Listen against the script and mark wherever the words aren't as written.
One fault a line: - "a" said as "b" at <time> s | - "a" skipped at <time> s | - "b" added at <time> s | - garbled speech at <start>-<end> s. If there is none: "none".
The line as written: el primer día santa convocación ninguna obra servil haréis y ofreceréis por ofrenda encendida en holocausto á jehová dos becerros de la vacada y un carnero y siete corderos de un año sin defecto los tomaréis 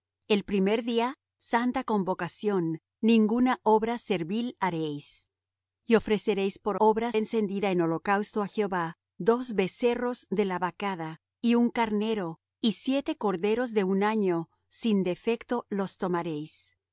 - "ofrenda" said as "obra" at 6.8 s